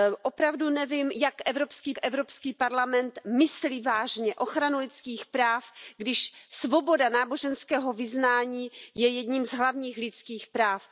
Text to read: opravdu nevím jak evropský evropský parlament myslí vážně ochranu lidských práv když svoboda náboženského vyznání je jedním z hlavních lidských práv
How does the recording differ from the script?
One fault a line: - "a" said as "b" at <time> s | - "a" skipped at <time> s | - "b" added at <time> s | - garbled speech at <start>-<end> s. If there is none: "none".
none